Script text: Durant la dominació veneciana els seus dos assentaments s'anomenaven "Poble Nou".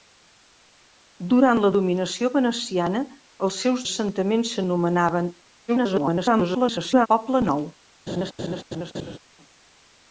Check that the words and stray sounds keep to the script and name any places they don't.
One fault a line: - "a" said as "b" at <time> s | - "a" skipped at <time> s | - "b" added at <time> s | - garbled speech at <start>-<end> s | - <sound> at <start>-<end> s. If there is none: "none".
- "dos" skipped at 3.8 s
- garbled speech at 5.7-7.1 s
- laugh at 8.1-9.2 s